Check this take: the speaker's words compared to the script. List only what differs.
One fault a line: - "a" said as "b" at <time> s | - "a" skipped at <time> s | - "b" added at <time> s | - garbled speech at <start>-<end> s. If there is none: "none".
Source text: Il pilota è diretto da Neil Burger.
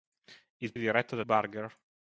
- "pilota" skipped at 0.7 s
- "Neil" skipped at 1.2 s